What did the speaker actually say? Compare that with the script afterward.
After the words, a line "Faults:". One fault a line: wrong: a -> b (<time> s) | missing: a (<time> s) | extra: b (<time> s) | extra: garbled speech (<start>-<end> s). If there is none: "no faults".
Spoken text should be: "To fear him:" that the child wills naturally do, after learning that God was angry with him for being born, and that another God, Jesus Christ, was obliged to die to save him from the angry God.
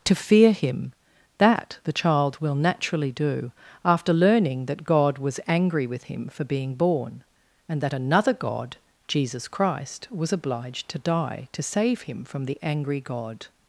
"To fear him:" that the child will naturally do, after learning that God was angry with him for being born, and that another God, Jesus Christ, was obliged to die to save him from the angry God.
Faults:
wrong: wills -> will (2.4 s)